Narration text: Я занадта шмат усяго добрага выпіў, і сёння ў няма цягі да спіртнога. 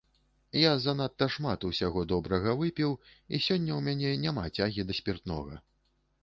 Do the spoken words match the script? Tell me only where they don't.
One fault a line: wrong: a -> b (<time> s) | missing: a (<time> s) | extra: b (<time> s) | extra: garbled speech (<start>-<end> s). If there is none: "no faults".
extra: мяне (3.9 s)